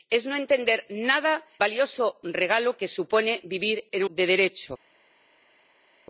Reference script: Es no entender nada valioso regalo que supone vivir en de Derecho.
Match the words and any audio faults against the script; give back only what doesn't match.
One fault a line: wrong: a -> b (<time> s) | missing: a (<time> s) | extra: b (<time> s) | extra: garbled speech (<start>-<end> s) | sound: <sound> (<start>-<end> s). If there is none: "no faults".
no faults